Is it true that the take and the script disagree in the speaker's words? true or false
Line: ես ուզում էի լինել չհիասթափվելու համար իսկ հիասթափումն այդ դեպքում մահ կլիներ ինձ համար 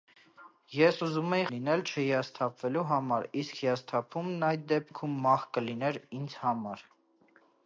false